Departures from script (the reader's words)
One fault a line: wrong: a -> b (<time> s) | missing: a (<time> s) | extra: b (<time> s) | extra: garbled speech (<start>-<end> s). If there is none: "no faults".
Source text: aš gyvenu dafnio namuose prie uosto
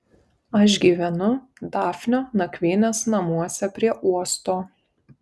extra: nakvynės (2.4 s)